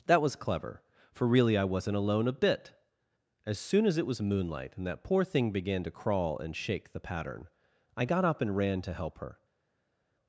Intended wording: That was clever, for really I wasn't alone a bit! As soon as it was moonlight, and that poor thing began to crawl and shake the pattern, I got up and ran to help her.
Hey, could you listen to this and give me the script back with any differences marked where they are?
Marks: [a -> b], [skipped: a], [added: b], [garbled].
That was clever, for really I wasn't alone a bit! As soon as it was moonlight, and that poor thing began to crawl and shake the pattern, I got up and ran to help her.